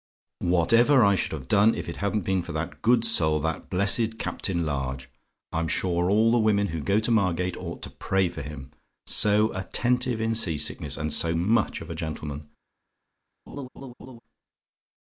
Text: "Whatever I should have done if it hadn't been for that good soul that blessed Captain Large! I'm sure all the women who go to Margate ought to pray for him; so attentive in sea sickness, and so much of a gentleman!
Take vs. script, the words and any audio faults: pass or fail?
fail